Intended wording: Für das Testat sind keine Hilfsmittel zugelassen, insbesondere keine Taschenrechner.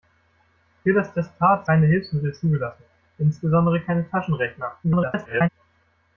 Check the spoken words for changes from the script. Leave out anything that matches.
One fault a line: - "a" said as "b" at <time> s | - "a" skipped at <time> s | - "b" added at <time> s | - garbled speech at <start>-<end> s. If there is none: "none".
- "sind" skipped at 1.7 s
- garbled speech at 4.8-5.5 s